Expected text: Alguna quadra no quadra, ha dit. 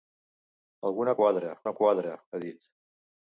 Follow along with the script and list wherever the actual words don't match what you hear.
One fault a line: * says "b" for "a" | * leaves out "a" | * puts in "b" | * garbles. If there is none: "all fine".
all fine